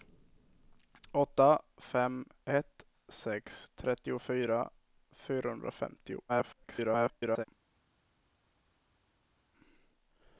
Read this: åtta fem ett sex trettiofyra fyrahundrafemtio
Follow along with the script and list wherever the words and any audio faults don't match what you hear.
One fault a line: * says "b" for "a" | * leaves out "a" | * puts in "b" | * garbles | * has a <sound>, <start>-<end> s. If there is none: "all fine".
* garbles